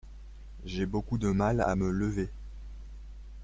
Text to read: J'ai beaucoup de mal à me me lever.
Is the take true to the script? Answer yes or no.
no